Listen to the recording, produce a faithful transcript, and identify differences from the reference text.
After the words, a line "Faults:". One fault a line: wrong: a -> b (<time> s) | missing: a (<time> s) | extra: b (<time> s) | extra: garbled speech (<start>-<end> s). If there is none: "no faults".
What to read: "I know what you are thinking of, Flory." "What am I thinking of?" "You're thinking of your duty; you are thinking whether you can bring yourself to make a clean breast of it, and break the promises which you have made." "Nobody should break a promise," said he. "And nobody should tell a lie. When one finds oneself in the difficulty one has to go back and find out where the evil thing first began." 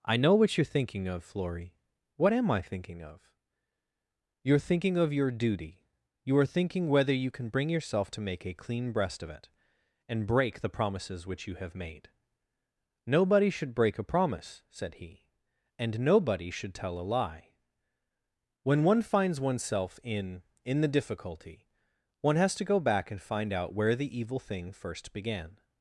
"I know what you are thinking of, Flory." "What am I thinking of?" "You're thinking of your duty; you are thinking whether you can bring yourself to make a clean breast of it, and break the promises which you have made." "Nobody should break a promise," said he. "And nobody should tell a lie. When one finds oneself in in the difficulty one has to go back and find out where the evil thing first began."
Faults:
extra: in (20.6 s)